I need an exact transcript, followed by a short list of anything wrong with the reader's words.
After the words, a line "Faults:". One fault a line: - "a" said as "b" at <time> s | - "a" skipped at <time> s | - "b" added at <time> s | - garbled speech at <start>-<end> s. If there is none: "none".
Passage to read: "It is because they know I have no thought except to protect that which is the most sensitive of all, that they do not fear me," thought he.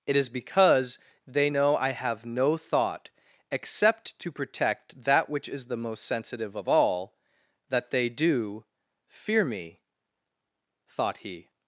"It is because they know I have no thought except to protect that which is the most sensitive of all, that they do fear me," thought he.
Faults:
- "not" skipped at 8.6 s